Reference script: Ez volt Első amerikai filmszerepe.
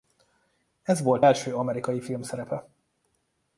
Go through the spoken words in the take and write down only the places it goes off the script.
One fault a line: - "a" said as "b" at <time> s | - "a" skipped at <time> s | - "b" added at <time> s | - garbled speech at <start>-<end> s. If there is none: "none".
none